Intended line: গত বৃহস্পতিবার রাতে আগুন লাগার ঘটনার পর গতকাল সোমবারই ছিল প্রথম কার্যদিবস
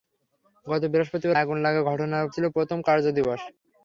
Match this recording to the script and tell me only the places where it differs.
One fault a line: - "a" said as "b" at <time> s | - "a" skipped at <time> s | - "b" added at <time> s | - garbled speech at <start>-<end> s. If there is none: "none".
- "রাতে" skipped at 1.4 s
- "পর গতকাল সোমবারই" skipped at 2.3 s